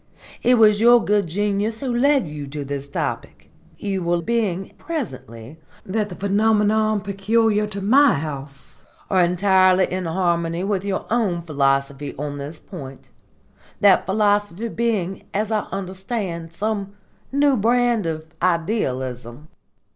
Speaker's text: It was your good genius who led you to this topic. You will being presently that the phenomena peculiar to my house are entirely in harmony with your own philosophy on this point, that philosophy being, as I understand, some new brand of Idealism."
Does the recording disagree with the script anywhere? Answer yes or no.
no